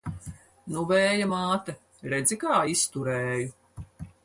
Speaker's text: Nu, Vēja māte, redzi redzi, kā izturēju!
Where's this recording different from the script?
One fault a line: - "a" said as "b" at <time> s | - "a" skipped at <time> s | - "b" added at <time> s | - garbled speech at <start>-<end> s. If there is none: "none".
- "redzi" skipped at 2.4 s